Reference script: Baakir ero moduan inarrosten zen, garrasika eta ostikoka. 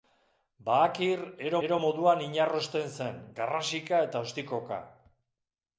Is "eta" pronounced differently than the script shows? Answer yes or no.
no